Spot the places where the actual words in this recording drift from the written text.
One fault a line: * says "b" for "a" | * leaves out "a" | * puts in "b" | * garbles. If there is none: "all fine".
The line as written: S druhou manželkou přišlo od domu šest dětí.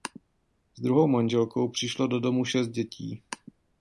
* says "do" for "od"